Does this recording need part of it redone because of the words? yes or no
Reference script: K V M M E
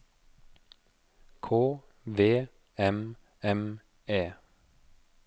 no